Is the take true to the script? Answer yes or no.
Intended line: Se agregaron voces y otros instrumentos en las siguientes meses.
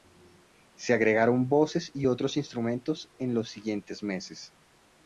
no